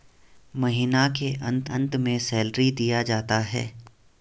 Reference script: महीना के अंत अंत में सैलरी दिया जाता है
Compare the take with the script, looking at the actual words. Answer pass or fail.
pass